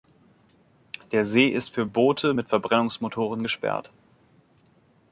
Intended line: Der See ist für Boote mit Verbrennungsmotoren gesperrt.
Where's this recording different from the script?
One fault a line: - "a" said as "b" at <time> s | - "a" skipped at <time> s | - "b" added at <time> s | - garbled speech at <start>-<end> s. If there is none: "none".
none